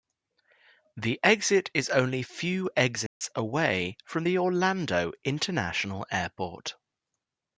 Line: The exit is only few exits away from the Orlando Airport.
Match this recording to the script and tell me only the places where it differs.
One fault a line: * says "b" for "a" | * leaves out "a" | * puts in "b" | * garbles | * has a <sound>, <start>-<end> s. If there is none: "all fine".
* has a dropout, 3.1-3.2 s
* puts in "International"